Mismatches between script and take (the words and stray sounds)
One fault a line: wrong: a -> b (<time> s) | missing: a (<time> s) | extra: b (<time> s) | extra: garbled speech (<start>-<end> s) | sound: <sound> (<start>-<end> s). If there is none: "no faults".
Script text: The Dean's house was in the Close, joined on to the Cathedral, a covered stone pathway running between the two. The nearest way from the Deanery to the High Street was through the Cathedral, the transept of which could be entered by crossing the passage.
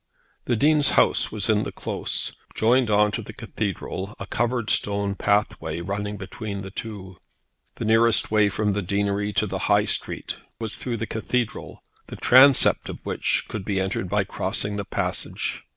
no faults